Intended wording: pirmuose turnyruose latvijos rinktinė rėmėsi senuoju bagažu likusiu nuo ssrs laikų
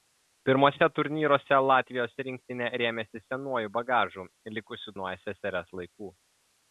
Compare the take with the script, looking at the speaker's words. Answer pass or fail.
pass